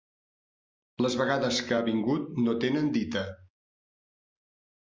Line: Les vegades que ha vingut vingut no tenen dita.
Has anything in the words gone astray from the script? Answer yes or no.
yes